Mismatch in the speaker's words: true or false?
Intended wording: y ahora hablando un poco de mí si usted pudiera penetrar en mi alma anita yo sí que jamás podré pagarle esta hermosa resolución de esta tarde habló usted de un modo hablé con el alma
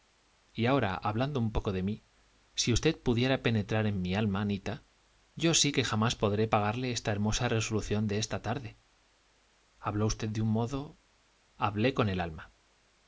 false